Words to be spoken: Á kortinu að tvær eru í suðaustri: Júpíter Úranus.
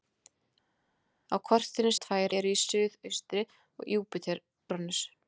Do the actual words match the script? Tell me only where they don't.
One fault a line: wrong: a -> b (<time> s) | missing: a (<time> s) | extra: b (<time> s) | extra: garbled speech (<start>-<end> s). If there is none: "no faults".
no faults